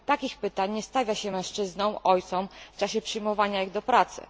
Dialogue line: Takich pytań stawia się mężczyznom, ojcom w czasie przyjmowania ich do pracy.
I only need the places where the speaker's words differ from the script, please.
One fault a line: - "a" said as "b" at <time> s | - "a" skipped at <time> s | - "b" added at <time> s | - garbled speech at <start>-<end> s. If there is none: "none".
- "nie" added at 0.7 s